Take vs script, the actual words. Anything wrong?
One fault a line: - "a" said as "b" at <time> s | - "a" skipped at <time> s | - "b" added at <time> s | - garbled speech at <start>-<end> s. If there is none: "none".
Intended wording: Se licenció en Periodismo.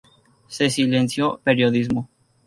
- "en" skipped at 1.4 s